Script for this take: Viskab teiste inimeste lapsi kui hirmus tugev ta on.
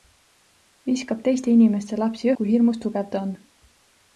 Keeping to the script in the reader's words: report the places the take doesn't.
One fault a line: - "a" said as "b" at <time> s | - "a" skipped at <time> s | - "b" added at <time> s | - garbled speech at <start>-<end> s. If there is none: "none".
none